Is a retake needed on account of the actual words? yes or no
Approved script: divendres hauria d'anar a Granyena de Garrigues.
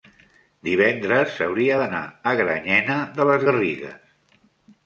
yes